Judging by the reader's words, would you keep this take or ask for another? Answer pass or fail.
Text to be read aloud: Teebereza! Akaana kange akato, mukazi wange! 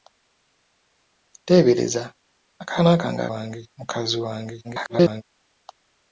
fail